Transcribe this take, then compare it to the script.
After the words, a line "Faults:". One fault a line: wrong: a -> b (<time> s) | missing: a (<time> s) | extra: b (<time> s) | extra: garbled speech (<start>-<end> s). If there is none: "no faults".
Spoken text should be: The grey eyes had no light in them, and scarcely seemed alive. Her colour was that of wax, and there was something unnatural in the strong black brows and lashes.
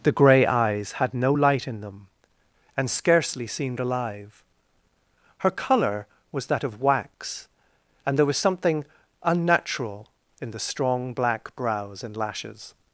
The grey eyes had no light in them, and scarcely seemed alive. Her colour was that of wax, and there was something unnatural in the strong black brows and lashes.
Faults:
no faults